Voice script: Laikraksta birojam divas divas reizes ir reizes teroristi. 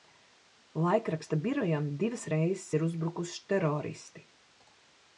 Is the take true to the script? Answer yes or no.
no